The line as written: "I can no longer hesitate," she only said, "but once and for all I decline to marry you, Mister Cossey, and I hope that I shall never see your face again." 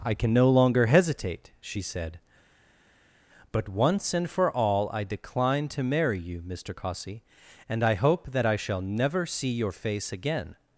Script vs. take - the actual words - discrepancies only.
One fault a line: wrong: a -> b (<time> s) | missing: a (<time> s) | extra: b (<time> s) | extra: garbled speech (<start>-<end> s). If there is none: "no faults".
missing: only (1.8 s)